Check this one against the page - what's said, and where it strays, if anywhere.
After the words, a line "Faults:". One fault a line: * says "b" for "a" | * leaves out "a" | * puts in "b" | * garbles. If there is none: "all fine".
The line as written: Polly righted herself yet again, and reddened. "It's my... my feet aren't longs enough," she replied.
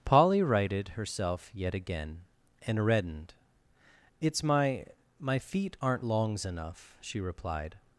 Polly righted herself yet again, and reddened. "It's my... my feet aren't longs enough," she replied.
Faults:
all fine